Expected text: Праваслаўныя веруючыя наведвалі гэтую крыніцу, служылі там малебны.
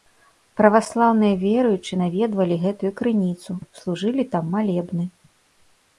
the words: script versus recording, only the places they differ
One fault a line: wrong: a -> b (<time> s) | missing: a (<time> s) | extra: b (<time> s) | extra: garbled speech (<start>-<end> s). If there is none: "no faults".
no faults